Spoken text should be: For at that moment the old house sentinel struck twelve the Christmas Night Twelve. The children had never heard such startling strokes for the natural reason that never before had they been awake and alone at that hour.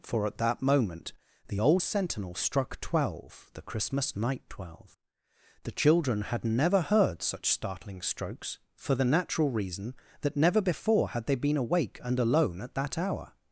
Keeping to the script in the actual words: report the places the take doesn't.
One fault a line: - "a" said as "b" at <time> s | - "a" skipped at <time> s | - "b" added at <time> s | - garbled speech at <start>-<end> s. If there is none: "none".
- "house" skipped at 1.8 s